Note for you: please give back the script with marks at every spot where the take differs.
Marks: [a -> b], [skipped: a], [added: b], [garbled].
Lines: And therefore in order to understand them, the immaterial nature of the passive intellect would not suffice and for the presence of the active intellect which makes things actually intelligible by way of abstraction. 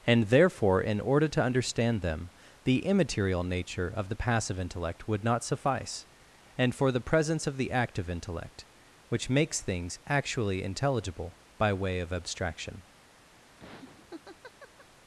And therefore in order to understand them, the immaterial nature of the passive intellect would not suffice and for the presence of the active intellect which makes things actually intelligible by way of abstraction.